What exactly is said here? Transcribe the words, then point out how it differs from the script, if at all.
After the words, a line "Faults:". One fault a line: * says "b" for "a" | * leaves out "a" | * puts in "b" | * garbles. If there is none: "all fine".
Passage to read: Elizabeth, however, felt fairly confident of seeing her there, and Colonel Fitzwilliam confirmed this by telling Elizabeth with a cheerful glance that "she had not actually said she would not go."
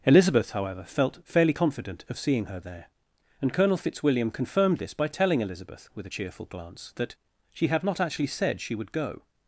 Elizabeth, however, felt fairly confident of seeing her there, and Colonel Fitzwilliam confirmed this by telling Elizabeth with a cheerful glance that "she had not actually said she would go."
Faults:
* leaves out "not"